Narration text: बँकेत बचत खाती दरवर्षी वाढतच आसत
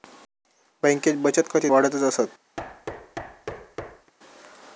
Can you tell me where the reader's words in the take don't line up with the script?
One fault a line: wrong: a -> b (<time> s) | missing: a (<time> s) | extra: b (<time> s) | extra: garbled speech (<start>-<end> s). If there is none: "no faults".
missing: दरवर्षी (1.7 s)